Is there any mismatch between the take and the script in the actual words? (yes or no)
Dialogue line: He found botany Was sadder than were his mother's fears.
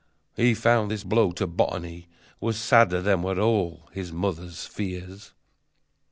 yes